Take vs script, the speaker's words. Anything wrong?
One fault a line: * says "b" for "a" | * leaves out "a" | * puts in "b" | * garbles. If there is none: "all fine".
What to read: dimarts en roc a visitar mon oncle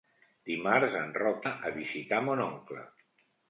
all fine